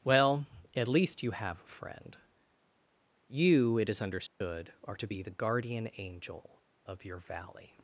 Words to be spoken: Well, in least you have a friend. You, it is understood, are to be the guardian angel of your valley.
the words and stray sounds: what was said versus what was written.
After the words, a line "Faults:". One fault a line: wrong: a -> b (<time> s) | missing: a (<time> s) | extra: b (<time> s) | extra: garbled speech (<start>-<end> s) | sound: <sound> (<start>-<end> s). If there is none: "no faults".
Well, at least you have a friend. You, it is understood, are to be the guardian angel of your valley.
Faults:
wrong: in -> at (0.8 s)
sound: dropout (4.3-4.4 s)